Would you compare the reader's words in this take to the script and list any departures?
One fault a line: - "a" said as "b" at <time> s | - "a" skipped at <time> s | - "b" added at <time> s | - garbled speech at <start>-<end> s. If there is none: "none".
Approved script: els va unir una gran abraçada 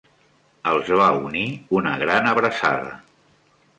none